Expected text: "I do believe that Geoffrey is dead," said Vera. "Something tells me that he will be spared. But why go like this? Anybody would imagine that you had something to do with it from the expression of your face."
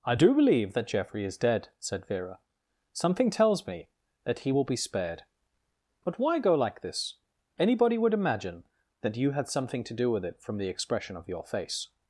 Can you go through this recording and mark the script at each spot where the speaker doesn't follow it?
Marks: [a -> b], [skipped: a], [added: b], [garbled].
"I do believe that Geoffrey is dead," said Vera. "Something tells me that he will be spared. But why go like this? Anybody would imagine that you had something to do with it from the expression of your face."